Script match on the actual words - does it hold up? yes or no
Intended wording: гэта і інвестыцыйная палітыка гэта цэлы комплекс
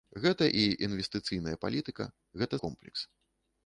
no